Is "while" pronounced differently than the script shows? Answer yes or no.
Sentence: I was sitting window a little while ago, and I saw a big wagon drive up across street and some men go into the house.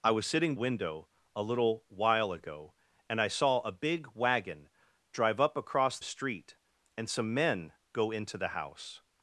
no